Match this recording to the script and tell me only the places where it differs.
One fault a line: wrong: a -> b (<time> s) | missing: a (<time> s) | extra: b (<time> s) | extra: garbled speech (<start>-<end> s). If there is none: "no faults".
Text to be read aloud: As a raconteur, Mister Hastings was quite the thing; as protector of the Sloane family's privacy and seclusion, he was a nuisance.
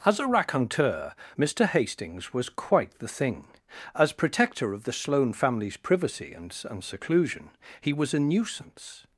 extra: and (6.7 s)